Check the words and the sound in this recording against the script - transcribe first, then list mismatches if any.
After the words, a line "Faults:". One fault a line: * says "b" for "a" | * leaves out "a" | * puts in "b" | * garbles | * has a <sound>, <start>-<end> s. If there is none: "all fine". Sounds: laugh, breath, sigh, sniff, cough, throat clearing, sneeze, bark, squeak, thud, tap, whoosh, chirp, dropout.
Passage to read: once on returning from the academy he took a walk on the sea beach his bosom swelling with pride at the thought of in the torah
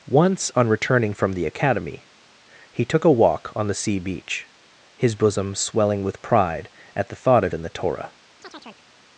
once on returning from the academy he took a walk on the sea beach his bosom swelling with pride at the thought of in the torah
Faults:
* has a chirp, 8.4-8.9 s